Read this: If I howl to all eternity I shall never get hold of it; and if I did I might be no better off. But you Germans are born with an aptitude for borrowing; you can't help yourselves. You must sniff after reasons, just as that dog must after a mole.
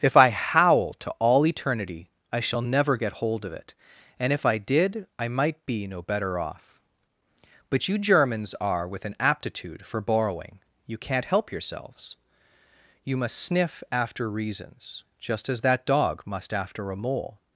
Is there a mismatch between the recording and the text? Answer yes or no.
yes